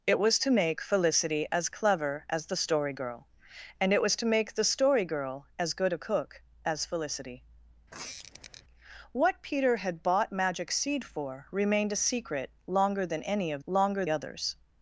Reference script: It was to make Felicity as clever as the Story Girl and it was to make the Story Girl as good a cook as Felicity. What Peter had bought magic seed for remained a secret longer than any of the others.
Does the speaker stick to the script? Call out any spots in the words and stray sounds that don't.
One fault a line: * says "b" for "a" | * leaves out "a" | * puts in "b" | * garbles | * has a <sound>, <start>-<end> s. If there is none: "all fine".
* has a squeak, 7.9-8.6 s
* says "longer" for "the"